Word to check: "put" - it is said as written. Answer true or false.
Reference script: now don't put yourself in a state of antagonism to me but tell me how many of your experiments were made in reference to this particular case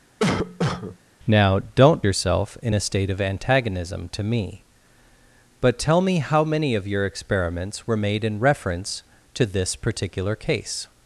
false